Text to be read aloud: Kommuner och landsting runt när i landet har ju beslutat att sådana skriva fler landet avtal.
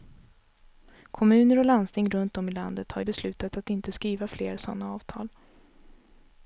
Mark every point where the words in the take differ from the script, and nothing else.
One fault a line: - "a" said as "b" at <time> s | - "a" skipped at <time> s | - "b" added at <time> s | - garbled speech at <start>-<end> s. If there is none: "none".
- "när" said as "om" at 2.4 s
- "sådana" said as "inte" at 3.7 s
- "landet" said as "sådana" at 4.6 s